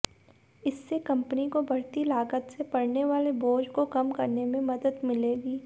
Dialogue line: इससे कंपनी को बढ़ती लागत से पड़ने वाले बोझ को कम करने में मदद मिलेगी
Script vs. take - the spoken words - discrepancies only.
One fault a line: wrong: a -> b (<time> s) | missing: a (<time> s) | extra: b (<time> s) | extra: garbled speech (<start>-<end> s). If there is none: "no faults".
no faults